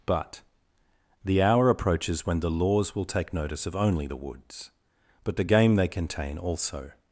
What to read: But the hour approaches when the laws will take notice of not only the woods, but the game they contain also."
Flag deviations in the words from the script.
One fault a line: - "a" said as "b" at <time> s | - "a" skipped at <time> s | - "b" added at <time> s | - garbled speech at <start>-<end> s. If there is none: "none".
- "not" skipped at 3.8 s